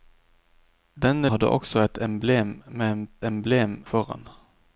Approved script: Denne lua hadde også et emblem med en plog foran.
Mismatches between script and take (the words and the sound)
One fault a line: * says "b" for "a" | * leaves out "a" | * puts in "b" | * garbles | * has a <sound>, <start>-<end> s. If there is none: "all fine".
* leaves out "lua"
* says "emblem" for "plog"